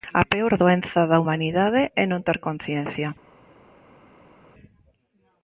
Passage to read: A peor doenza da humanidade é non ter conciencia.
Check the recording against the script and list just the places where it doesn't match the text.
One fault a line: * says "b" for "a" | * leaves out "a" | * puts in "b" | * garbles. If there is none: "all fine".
all fine